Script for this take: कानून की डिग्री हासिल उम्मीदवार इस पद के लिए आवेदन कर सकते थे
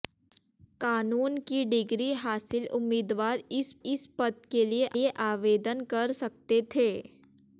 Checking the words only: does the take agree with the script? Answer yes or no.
no